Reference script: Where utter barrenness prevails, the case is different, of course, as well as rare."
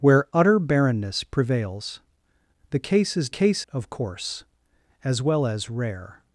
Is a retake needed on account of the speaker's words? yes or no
yes